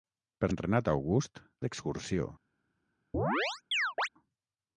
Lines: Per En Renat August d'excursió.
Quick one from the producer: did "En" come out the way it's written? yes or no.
yes